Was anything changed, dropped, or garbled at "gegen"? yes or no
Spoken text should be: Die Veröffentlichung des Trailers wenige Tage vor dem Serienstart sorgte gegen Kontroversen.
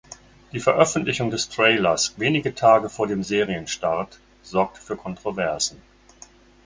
yes